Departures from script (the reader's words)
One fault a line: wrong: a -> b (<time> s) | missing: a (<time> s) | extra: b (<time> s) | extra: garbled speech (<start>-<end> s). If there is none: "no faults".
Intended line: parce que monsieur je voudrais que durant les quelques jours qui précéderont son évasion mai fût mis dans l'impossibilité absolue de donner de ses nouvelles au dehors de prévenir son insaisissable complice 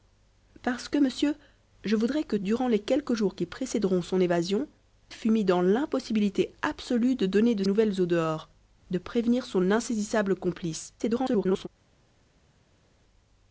missing: mai (4.7 s)
missing: ses (7.6 s)
extra: garbled speech (11.0-11.7 s)